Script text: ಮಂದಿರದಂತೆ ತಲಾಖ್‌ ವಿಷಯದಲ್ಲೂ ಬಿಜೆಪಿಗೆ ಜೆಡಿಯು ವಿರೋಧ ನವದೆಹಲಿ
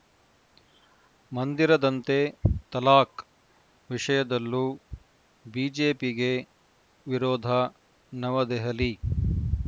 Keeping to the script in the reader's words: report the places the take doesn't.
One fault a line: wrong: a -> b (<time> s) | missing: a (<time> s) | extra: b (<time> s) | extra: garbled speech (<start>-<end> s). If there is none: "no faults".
missing: ಜೆಡಿಯು (6.3 s)